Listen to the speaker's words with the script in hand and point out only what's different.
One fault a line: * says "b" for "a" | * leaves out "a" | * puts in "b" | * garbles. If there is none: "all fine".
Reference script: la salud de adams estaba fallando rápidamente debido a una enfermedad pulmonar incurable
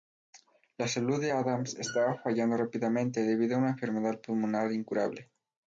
all fine